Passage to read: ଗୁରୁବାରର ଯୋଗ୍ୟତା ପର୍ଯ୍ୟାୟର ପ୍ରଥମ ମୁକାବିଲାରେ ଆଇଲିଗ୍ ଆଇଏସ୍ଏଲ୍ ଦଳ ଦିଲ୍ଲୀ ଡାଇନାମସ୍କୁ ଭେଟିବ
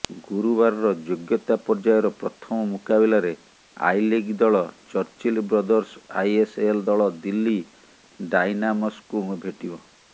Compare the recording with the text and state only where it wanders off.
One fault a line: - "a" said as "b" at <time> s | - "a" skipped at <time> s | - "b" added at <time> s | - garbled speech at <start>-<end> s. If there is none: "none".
- "ଦଳ ଚର୍ଚିଲ ବ୍ରଦର୍ସ" added at 4.4 s